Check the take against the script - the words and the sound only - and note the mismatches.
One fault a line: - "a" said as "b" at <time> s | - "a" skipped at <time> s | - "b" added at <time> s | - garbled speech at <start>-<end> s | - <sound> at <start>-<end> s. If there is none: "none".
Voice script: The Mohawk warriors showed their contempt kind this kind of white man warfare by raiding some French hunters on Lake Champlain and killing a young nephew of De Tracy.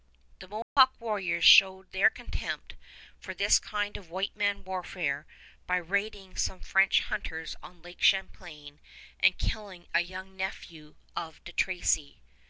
- dropout at 0.6-0.8 s
- "kind" said as "for" at 3.2 s